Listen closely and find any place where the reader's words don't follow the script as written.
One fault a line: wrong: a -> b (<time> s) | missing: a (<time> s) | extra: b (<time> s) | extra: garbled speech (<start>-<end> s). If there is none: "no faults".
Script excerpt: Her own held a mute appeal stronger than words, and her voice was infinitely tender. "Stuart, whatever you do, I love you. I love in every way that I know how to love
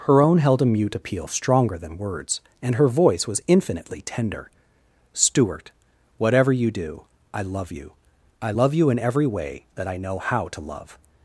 extra: you (8.7 s)